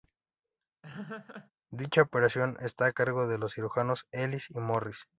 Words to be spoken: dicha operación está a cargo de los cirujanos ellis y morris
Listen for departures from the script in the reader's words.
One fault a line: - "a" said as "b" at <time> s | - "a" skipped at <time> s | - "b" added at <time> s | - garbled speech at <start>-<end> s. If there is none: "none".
none